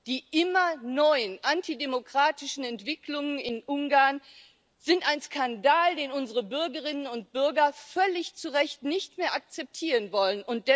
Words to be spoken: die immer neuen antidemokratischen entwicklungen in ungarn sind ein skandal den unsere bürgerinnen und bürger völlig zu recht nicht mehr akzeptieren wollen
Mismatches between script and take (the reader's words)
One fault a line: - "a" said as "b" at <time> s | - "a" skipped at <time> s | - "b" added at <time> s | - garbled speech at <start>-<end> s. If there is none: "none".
none